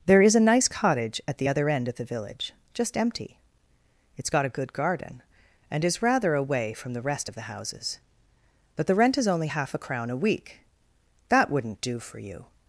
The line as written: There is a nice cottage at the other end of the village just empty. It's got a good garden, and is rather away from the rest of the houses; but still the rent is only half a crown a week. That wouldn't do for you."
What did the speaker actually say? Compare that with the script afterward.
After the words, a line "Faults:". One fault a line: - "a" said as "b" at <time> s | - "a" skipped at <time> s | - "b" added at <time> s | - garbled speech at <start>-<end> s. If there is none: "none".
There is a nice cottage at the other end of the village just empty. It's got a good garden, and is rather away from the rest of the houses; but the rent is only half a crown a week. That wouldn't do for you."
Faults:
- "still" skipped at 8.8 s